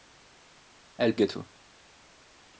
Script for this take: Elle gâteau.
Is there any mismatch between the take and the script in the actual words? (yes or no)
no